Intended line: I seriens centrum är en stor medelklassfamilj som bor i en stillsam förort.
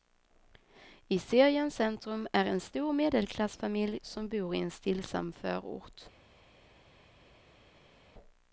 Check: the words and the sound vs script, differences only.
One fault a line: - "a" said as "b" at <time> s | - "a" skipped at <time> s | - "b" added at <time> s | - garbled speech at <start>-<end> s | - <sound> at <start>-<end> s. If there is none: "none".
none